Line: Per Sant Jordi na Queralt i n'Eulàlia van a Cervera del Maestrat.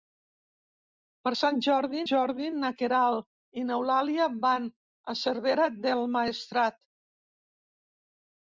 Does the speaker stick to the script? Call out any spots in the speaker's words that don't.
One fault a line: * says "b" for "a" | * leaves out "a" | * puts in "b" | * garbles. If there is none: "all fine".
* puts in "Jordi"